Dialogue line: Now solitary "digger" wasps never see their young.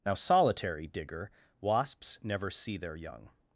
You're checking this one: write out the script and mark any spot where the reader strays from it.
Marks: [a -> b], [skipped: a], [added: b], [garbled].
Now solitary "digger" wasps never see their young.